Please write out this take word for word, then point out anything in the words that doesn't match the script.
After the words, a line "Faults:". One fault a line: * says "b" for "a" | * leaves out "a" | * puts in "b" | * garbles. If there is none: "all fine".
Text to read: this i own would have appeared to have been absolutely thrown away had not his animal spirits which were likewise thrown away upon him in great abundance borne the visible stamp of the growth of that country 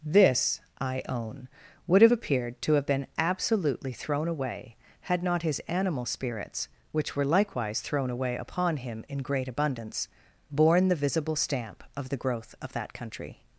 this i own would have appeared to have been absolutely thrown away had not his animal spirits which were likewise thrown away upon him in great abundance borne the visible stamp of the growth of that country
Faults:
all fine